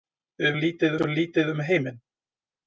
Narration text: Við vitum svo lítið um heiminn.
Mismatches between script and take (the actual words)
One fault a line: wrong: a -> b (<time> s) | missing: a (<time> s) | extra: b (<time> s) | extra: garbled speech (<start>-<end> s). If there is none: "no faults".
wrong: vitum -> lítið (0.6 s)